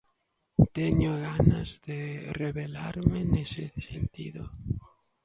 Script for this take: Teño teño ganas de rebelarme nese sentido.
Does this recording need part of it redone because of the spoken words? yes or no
yes